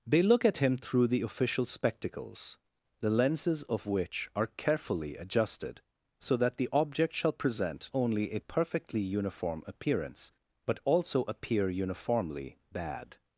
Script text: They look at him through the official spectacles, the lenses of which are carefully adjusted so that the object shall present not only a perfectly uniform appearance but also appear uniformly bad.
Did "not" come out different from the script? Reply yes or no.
yes